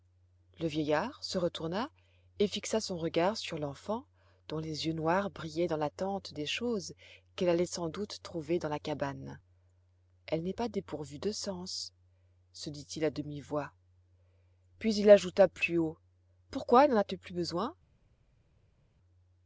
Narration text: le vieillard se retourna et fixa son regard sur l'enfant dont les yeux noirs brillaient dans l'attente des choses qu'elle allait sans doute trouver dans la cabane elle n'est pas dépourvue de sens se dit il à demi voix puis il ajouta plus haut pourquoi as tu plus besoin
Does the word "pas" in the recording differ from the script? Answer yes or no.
no